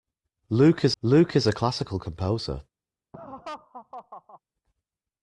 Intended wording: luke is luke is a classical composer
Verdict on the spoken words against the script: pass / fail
pass